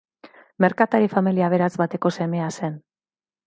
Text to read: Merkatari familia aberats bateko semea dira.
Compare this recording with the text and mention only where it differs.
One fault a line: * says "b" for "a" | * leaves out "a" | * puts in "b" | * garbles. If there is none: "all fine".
* says "zen" for "dira"